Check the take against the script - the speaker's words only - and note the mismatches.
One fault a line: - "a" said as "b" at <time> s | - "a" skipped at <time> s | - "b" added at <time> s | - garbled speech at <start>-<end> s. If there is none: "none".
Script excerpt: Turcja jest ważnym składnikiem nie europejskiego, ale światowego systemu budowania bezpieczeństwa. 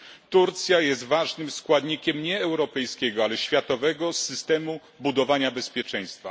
none